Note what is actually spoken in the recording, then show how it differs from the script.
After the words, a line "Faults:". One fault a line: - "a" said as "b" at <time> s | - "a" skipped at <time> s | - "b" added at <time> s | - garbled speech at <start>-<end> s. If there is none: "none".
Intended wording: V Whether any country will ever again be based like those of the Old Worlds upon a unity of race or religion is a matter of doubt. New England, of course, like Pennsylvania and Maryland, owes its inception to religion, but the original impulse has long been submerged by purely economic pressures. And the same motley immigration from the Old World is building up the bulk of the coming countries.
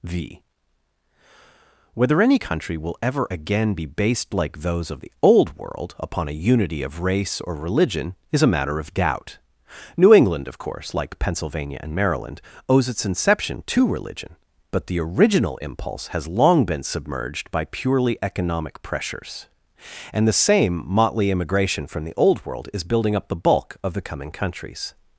V Whether any country will ever again be based like those of the Old World upon a unity of race or religion is a matter of doubt. New England, of course, like Pennsylvania and Maryland, owes its inception to religion, but the original impulse has long been submerged by purely economic pressures. And the same motley immigration from the Old World is building up the bulk of the coming countries.
Faults:
- "Worlds" said as "World" at 5.6 s